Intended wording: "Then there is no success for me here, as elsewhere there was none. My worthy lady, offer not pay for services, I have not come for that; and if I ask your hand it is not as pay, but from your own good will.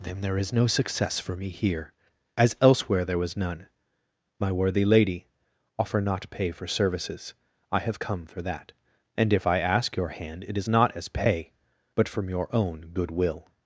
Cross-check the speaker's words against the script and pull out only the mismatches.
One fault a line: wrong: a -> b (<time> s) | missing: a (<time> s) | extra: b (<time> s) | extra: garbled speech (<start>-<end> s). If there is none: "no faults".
missing: not (8.0 s)